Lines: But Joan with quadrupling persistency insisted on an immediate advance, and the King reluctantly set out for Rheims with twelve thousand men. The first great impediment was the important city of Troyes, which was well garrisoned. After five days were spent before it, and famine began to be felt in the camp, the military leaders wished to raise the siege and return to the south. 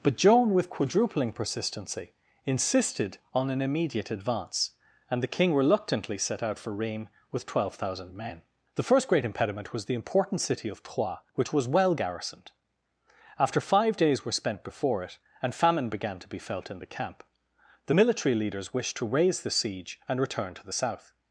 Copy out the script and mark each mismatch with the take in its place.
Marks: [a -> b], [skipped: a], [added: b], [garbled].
But Joan with quadrupling persistency insisted on an immediate advance, and the King reluctantly set out for Rheims with twelve thousand men. The first great impediment was the important city of Troyes, which was well garrisoned. After five days were spent before it, and famine began to be felt in the camp, the military leaders wished to raise the siege and return to the south.